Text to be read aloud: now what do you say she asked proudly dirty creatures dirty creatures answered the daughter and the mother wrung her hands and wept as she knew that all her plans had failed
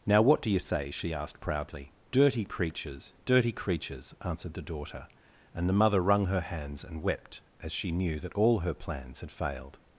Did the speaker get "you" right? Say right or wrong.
right